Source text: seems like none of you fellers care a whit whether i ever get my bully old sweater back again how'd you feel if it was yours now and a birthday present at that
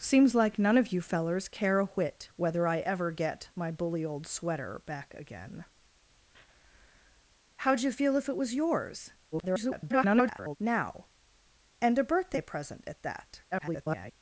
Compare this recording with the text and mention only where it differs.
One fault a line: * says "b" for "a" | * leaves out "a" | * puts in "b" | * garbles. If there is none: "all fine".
* garbles
* garbles